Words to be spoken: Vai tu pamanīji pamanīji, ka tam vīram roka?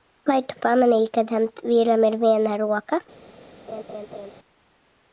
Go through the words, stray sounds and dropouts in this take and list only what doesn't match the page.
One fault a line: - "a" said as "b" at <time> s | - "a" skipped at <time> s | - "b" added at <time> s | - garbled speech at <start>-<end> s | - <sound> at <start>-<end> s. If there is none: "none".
- "pamanīji" skipped at 1.1 s
- "ir viena" added at 2.1 s
- laugh at 3.7-4.3 s